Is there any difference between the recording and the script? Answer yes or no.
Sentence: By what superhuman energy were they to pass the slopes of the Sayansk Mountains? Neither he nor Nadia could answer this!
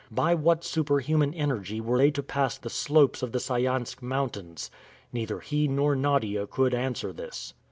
no